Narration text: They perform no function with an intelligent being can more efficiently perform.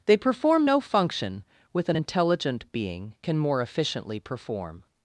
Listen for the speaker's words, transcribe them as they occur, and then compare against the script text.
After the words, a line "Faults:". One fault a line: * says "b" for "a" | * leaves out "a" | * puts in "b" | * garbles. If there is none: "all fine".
They perform no function with an intelligent being can more efficiently perform.
Faults:
all fine